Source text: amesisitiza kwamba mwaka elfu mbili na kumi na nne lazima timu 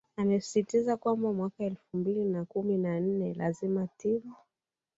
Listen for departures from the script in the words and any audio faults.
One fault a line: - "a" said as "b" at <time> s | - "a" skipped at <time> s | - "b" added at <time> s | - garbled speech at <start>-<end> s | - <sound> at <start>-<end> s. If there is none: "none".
none